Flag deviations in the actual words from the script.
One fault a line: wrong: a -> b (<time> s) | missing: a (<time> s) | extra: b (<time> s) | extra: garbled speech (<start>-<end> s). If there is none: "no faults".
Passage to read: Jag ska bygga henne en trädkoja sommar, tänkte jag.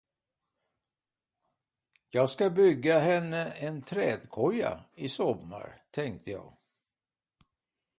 extra: i (5.0 s)